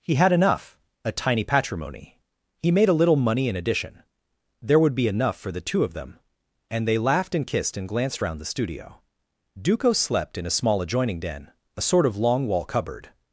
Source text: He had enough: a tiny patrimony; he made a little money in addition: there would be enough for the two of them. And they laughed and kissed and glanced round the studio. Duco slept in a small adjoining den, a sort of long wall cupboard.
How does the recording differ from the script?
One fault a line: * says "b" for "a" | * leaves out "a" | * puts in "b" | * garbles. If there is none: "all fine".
all fine